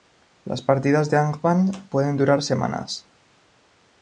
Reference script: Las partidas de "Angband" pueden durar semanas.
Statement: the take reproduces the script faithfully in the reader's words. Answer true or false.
true